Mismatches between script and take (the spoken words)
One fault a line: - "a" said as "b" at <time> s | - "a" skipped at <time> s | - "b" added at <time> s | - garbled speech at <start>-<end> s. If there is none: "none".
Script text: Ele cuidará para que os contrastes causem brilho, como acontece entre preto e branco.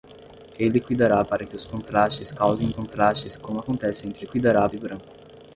- "brilho" said as "contrastes" at 2.7 s
- "preto" said as "cuidará" at 4.2 s